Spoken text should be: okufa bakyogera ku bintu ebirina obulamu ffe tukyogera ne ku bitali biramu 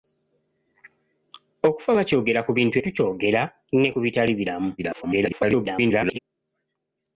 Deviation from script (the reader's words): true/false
true